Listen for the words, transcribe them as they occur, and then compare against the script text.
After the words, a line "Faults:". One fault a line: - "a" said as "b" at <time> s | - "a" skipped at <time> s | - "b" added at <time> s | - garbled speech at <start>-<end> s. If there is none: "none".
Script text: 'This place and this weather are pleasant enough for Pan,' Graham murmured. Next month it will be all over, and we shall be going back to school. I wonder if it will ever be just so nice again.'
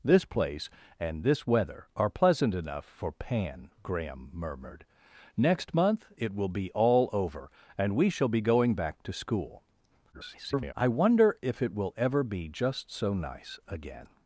'This place and this weather are pleasant enough for Pan,' Graham murmured. Next month it will be all over, and we shall be going back to school. [garbled] I wonder if it will ever be just so nice again.'
Faults:
- garbled speech at 10.1-10.7 s